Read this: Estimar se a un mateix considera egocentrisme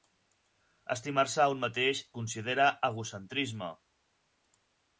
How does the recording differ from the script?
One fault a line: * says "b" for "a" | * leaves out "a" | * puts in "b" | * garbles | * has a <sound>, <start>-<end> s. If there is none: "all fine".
all fine